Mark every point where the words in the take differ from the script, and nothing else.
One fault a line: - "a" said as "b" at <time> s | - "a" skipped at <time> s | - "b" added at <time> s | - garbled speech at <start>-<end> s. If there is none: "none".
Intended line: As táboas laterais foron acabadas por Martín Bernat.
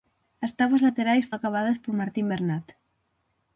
- "foron" skipped at 1.3 s